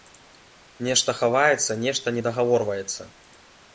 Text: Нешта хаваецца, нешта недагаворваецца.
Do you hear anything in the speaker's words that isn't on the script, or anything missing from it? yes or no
no